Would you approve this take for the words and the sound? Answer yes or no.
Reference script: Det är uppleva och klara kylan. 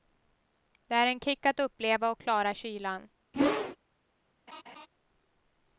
no